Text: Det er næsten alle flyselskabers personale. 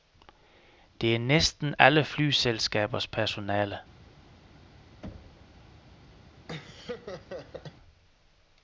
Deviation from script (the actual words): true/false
false